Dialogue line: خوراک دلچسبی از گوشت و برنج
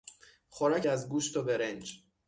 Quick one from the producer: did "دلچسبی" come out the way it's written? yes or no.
no